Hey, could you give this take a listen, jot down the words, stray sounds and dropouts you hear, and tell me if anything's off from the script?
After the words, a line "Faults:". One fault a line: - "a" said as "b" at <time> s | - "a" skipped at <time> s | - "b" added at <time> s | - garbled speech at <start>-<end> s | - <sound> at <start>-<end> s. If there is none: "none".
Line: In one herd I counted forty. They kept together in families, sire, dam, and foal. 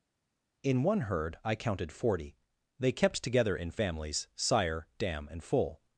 In one herd I counted forty. They kept together in families, sire, dam, and foal.
Faults:
none